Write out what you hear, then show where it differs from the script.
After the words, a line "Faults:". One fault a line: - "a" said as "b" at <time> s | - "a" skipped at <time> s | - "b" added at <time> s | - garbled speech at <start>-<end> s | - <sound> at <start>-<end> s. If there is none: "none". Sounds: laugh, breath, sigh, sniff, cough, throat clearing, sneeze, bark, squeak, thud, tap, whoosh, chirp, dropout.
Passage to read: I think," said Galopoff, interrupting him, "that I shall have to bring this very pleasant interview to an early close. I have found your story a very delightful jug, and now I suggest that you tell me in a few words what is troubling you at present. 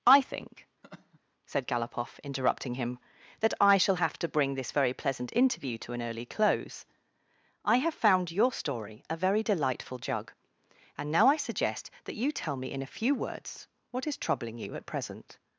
I think," said Galopoff, interrupting him, "that I shall have to bring this very pleasant interview to an early close. I have found your story a very delightful jug, and now I suggest that you tell me in a few words what is troubling you at present.
Faults:
- laugh at 0.8-1.2 s